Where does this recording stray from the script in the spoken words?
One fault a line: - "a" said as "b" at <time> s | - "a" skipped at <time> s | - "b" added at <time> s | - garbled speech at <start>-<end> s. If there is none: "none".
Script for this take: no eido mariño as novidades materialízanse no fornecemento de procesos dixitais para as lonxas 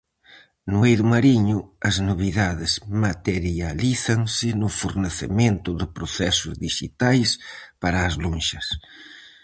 none